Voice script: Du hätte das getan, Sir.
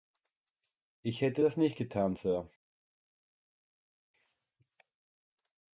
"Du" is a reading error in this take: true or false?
true